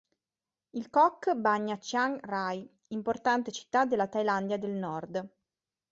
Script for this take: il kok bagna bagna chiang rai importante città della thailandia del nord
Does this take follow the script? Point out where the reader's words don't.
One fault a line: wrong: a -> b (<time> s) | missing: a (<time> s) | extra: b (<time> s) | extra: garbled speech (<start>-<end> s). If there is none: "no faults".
missing: bagna (1.8 s)